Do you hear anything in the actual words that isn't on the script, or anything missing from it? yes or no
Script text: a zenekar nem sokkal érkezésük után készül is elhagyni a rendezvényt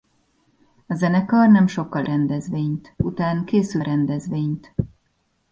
yes